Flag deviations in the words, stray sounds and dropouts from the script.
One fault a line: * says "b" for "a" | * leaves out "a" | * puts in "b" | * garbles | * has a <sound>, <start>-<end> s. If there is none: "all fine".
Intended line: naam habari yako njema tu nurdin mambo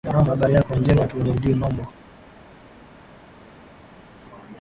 all fine